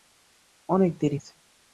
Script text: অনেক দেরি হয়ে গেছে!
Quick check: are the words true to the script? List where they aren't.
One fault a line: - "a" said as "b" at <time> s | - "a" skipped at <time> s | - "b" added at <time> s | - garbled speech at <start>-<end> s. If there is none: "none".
- "হয়ে" skipped at 1.2 s